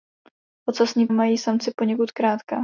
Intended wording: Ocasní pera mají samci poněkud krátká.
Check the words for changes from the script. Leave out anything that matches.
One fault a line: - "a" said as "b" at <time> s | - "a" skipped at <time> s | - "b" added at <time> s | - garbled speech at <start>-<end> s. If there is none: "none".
- "pera" skipped at 1.1 s